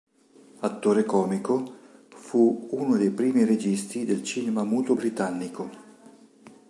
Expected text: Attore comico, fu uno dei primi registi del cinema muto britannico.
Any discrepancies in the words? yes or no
no